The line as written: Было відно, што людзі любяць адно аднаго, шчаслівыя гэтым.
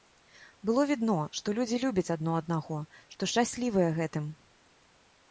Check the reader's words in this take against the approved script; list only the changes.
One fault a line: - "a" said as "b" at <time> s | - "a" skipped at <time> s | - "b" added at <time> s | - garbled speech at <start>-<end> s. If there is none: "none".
- "што" added at 3.2 s